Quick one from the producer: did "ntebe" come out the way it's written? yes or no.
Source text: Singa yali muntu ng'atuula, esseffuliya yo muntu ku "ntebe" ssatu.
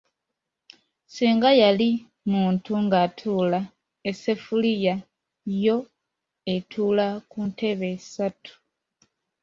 yes